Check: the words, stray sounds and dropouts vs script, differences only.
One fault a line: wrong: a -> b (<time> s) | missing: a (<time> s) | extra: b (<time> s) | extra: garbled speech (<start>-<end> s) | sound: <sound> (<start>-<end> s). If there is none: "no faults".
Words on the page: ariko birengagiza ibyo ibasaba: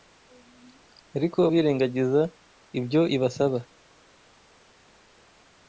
no faults